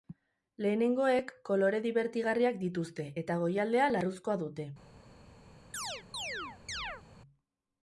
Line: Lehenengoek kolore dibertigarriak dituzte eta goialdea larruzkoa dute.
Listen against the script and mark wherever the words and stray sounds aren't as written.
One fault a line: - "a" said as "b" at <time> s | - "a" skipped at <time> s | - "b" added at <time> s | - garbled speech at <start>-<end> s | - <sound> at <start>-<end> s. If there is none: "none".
- chirp at 5.7-7.0 s